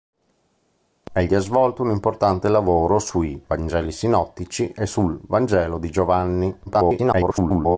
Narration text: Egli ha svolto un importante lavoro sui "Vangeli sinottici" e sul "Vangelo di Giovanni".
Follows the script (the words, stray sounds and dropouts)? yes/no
no